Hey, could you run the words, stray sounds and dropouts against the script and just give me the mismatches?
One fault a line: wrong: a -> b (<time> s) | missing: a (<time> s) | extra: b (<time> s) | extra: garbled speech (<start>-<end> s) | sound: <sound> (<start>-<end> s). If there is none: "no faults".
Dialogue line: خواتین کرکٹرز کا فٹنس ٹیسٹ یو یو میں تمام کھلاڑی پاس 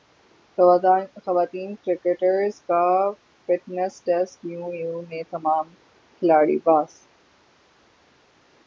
no faults